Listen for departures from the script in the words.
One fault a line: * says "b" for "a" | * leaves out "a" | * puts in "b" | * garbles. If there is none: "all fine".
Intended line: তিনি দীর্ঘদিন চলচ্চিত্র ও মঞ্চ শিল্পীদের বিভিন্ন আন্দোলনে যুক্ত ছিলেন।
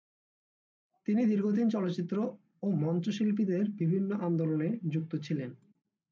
all fine